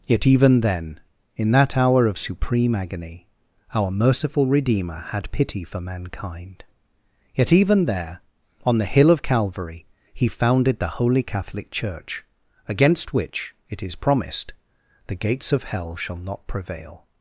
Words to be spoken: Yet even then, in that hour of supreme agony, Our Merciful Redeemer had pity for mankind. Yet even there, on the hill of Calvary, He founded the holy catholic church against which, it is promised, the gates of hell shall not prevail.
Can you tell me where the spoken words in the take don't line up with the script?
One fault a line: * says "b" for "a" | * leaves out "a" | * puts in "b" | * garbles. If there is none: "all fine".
all fine